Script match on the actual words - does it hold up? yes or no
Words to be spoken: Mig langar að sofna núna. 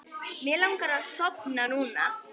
yes